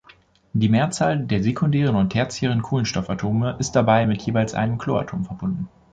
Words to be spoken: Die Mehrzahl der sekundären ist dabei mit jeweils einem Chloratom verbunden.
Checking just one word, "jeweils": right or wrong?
right